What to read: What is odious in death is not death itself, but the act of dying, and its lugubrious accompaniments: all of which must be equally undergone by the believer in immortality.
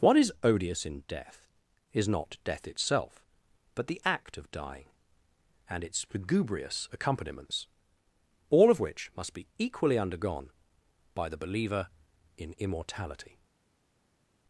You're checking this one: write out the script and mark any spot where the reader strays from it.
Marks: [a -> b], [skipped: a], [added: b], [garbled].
What is odious in death is not death itself, but the act of dying, and its lugubrious accompaniments: all of which must be equally undergone by the believer in immortality.